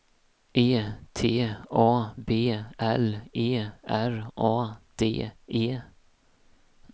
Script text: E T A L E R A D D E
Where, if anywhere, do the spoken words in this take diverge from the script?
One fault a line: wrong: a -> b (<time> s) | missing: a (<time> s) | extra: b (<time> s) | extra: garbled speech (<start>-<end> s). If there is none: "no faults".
extra: B (2.2 s)
missing: D (5.3 s)